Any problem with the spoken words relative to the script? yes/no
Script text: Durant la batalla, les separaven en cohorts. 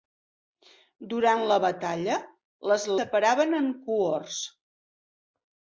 no